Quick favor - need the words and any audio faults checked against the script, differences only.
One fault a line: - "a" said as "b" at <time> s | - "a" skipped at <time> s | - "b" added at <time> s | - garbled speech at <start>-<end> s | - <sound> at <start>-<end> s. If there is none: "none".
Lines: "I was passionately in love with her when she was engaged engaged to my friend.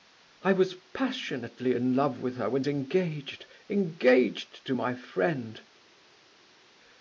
- "she was" skipped at 2.6 s